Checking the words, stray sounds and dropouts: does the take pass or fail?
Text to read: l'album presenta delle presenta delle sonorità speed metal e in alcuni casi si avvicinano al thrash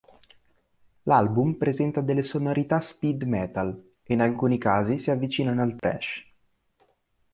fail